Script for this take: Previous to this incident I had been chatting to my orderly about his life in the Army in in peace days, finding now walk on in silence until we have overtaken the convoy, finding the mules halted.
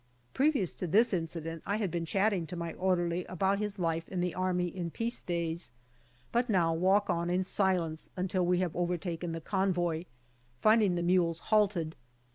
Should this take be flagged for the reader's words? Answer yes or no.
yes